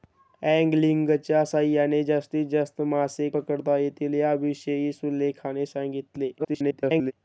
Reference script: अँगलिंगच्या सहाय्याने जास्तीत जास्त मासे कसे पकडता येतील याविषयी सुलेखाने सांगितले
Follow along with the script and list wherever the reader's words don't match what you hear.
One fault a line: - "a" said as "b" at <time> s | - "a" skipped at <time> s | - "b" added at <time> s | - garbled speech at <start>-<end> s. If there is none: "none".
- "कसे" skipped at 3.3 s
- garbled speech at 6.4-7.1 s